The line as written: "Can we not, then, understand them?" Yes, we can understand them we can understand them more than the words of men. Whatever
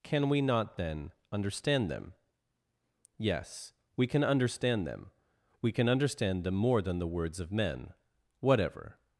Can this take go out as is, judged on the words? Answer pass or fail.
pass